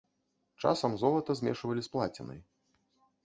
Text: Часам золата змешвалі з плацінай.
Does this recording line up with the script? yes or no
yes